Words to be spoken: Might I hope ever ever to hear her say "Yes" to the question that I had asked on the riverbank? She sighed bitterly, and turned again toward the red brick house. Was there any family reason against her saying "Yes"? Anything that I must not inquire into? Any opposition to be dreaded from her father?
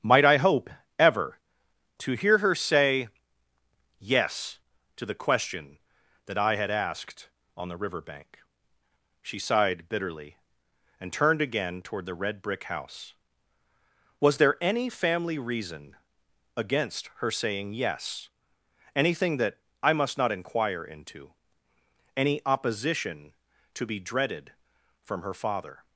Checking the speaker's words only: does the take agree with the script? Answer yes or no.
no